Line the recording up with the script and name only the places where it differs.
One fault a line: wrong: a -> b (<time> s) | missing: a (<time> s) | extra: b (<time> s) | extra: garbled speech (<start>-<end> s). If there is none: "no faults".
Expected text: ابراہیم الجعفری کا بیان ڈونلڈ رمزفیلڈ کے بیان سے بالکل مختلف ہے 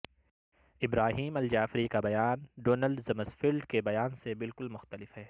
no faults